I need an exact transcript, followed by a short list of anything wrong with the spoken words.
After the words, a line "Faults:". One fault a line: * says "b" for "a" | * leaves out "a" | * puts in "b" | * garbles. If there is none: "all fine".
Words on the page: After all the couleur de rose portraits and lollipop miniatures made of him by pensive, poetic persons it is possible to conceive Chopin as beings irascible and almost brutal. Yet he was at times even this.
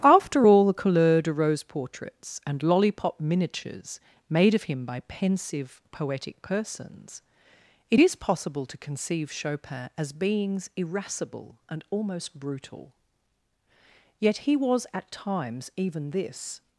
After all the couleur de rose portraits and lollipop miniatures made of him by pensive, poetic persons it is possible to conceive Chopin as beings irascible and almost brutal. Yet he was at times even this.
Faults:
all fine